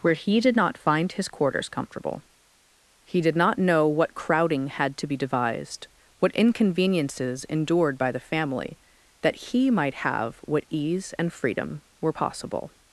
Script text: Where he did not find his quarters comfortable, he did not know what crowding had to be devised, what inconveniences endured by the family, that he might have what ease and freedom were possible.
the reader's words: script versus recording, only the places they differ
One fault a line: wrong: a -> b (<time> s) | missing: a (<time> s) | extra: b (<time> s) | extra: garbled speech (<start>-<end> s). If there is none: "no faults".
no faults